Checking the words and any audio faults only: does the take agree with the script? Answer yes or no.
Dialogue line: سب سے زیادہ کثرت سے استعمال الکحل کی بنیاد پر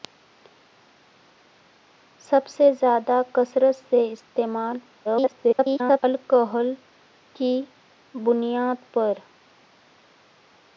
no